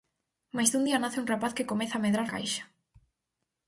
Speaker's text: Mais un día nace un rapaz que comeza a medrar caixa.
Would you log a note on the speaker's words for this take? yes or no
no